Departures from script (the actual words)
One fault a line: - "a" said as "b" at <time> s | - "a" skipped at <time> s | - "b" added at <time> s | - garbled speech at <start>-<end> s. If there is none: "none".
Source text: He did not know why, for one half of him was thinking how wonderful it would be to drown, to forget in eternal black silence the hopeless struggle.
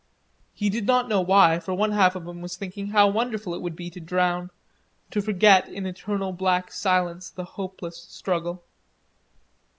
none